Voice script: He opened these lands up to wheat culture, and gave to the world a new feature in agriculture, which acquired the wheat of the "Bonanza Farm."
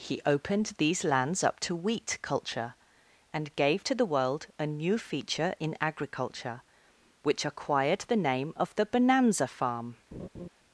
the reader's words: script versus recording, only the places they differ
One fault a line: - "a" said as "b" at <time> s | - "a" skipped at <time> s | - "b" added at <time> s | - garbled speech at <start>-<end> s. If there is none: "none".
- "wheat" said as "name" at 8.1 s